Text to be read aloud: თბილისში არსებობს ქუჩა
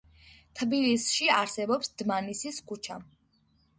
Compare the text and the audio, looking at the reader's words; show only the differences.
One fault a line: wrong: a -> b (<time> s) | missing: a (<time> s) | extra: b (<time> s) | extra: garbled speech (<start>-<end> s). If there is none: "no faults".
extra: დმანისის (2.0 s)